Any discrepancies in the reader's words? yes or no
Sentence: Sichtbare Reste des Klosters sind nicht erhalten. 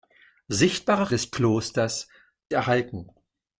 yes